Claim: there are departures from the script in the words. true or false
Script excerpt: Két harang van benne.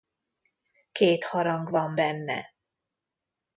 false